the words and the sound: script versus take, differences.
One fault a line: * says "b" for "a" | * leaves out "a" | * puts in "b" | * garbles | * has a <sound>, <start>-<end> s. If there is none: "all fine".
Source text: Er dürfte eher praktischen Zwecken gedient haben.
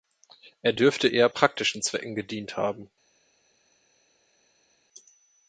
all fine